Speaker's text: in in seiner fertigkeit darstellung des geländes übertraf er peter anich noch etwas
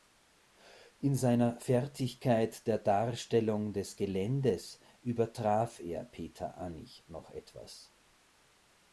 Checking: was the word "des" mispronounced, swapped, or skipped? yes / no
no